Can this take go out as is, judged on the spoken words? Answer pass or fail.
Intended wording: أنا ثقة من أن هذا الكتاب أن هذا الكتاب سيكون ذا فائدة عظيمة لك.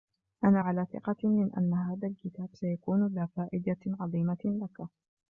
fail